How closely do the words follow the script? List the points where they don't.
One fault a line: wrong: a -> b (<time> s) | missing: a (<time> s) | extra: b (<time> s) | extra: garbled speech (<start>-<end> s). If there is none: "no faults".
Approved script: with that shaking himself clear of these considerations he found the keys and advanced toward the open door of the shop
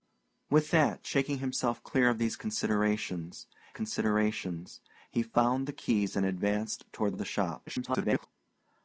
extra: considerations (3.7 s)
missing: the open door (7.1 s)
extra: garbled speech (7.7-8.3 s)